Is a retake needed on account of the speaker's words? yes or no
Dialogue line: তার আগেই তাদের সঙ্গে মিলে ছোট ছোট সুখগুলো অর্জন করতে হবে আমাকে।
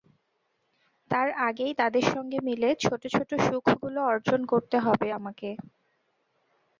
no